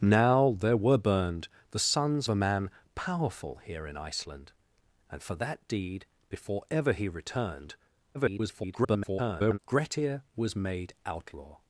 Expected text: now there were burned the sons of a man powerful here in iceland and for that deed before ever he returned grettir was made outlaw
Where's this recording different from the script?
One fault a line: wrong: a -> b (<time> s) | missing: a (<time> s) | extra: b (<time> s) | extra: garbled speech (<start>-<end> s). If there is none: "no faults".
missing: of (2.3 s)
extra: garbled speech (8.1-9.6 s)